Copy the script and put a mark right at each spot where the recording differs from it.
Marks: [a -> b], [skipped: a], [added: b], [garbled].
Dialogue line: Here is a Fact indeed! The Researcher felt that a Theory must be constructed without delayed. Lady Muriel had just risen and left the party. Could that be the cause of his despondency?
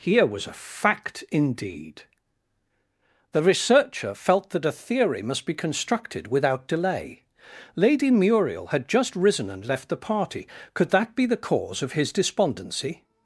Here [is -> was] a Fact indeed! The Researcher felt that a Theory must be constructed without [delayed. -> delay] Lady Muriel had just risen and left the party. Could that be the cause of his despondency?